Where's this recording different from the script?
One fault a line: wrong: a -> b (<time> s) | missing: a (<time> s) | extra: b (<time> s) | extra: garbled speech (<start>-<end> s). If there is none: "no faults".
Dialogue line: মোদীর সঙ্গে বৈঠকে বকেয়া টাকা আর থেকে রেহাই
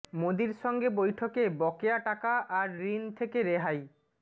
extra: ঋণ (2.9 s)